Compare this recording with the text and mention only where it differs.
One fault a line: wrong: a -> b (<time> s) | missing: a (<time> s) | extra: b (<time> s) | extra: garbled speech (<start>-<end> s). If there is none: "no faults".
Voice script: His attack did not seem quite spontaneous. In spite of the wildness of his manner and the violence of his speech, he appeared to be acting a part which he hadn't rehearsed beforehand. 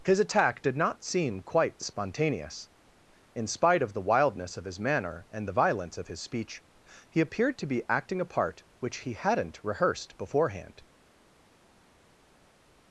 no faults